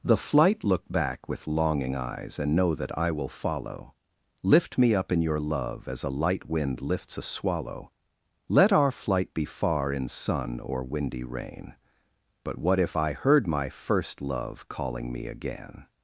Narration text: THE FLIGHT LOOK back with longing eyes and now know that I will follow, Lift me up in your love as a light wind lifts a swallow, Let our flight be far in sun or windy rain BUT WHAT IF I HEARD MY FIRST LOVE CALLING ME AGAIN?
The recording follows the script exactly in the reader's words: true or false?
false